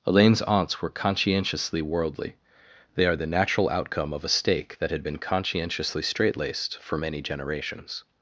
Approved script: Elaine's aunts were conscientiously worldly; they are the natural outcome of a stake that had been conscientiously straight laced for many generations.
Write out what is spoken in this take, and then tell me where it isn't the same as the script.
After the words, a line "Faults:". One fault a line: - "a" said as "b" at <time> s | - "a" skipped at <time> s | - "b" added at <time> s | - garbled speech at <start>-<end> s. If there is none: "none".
Elaine's aunts were conscientiously worldly; they are the natural outcome of a stake that had been conscientiously straight laced for many generations.
Faults:
none